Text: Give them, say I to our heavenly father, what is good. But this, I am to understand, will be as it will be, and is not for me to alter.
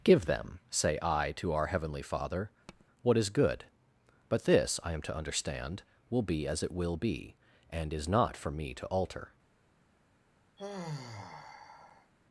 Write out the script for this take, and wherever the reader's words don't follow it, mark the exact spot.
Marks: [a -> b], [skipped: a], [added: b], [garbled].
Give them, say I to our heavenly father, what is good. But this, I am to understand, will be as it will be, and is not for me to alter.